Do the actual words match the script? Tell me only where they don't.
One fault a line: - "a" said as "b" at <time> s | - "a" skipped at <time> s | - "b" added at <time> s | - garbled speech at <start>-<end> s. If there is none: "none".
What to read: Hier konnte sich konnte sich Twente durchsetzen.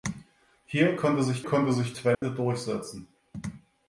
none